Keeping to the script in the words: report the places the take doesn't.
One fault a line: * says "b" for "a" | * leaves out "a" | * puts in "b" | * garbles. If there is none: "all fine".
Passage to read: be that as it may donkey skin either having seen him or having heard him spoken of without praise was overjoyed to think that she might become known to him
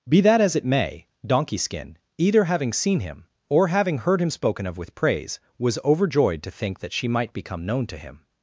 * says "with" for "without"